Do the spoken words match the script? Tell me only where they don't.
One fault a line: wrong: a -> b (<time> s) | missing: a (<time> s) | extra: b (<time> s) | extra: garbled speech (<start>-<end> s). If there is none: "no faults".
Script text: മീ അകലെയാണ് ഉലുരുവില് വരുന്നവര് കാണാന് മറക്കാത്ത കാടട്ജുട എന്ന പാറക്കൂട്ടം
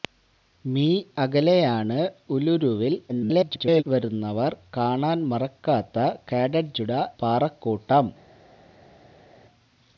extra: garbled speech (3.1-3.8 s)
missing: എന്ന (6.9 s)